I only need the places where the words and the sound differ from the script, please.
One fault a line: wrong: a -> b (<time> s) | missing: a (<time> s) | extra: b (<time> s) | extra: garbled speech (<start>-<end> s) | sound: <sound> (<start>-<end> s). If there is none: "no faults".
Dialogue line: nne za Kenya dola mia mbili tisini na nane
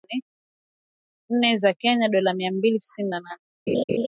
sound: laugh (3.7-4.1 s)